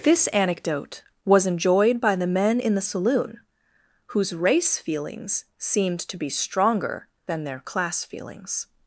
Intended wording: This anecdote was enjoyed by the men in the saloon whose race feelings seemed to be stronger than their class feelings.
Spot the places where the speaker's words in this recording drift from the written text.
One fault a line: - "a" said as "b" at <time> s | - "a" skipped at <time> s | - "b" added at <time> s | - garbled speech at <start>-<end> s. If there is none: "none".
none